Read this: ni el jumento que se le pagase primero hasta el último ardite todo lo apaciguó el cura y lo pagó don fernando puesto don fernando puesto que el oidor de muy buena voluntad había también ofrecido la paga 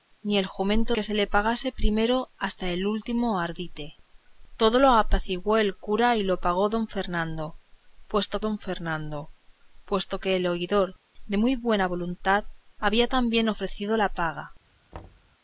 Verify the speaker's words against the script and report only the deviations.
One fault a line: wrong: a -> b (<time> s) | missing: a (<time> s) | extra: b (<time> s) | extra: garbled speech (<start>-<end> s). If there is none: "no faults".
no faults